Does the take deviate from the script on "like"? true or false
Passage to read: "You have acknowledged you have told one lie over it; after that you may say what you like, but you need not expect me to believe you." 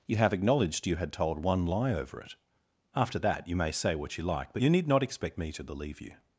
false